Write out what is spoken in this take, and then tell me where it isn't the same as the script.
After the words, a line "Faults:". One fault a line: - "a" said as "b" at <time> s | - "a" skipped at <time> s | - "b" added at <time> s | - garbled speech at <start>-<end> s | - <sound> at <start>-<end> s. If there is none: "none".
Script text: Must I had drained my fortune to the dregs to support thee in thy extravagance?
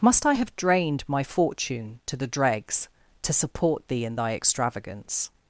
Must I have drained my fortune to the dregs to support thee in thy extravagance?
Faults:
- "had" said as "have" at 0.3 s